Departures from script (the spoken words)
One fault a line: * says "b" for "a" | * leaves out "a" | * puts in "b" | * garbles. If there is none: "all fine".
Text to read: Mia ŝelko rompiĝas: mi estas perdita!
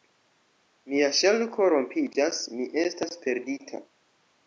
all fine